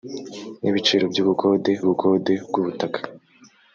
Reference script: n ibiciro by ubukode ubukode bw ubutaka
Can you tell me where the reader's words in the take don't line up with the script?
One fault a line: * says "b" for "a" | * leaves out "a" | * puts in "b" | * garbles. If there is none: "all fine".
all fine